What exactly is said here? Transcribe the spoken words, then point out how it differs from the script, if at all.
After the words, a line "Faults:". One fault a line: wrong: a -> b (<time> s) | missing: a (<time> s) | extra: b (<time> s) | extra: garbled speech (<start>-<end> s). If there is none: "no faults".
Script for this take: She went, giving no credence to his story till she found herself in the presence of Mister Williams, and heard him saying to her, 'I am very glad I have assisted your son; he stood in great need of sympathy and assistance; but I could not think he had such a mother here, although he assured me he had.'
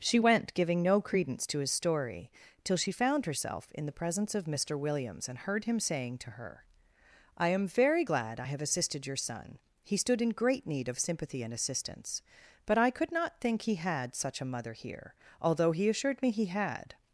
She went, giving no credence to his story till she found herself in the presence of Mister Williams, and heard him saying to her, 'I am very glad I have assisted your son; he stood in great need of sympathy and assistance; but I could not think he had such a mother here, although he assured me he had.'
Faults:
no faults